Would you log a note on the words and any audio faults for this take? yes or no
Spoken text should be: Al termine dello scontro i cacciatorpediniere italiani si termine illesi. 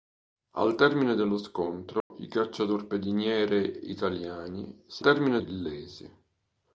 yes